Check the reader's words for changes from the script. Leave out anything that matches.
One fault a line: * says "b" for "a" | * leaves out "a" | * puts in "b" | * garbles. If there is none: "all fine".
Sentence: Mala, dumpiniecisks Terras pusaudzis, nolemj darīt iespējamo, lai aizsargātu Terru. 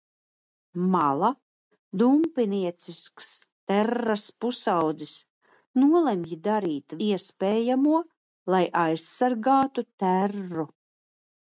all fine